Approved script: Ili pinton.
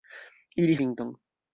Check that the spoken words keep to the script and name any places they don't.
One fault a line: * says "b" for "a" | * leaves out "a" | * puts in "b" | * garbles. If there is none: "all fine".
all fine